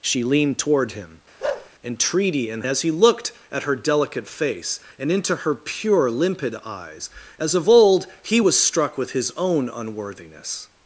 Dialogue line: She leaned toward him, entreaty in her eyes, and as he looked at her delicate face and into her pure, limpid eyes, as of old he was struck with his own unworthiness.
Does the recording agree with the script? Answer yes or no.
no